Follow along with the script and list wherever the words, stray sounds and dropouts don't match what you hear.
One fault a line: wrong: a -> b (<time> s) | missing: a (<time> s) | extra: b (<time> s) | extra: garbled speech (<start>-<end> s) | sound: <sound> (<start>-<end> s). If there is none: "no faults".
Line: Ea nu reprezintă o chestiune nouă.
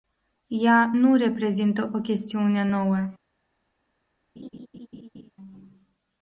sound: laugh (4.4-5.3 s)